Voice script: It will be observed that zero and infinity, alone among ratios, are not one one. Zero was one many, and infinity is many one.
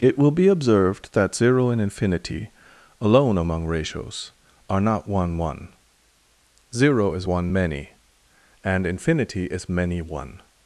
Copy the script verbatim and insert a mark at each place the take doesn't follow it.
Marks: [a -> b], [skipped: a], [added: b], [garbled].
It will be observed that zero and infinity, alone among ratios, are not one one. Zero [was -> is] one many, and infinity is many one.